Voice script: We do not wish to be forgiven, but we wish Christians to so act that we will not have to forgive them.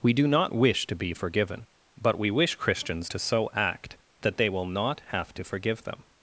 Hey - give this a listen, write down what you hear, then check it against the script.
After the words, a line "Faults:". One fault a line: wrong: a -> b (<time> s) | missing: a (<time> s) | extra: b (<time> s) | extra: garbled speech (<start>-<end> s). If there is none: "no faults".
We do not wish to be forgiven, but we wish Christians to so act that they will not have to forgive them.
Faults:
wrong: we -> they (4.4 s)